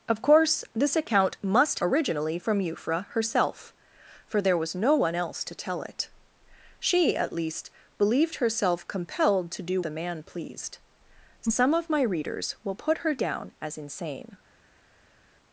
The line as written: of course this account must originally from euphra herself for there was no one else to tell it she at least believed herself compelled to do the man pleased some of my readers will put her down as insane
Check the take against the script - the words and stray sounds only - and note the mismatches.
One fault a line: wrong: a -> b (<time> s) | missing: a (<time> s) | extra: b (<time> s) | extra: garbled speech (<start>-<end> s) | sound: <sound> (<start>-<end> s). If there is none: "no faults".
no faults